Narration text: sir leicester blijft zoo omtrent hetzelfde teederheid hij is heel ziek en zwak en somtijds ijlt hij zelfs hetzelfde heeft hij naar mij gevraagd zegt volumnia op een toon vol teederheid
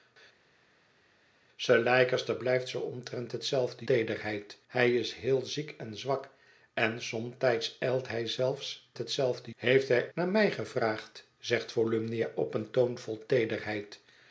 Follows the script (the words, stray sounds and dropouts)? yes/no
yes